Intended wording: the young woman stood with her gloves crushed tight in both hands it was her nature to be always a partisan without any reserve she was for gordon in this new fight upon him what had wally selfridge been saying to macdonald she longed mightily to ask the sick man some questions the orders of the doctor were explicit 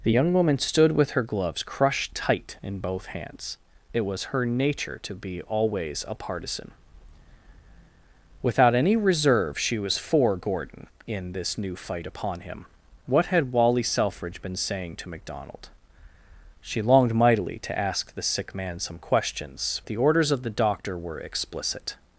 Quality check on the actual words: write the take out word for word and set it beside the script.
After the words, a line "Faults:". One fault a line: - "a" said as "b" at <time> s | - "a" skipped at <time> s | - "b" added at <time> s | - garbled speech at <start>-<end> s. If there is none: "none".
the young woman stood with her gloves crushed tight in both hands it was her nature to be always a partisan without any reserve she was for gordon in this new fight upon him what had wally selfridge been saying to macdonald she longed mightily to ask the sick man some questions the orders of the doctor were explicit
Faults:
none